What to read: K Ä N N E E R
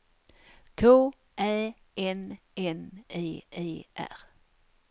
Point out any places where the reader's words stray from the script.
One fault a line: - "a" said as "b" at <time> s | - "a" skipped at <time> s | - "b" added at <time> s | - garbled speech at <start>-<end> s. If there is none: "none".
none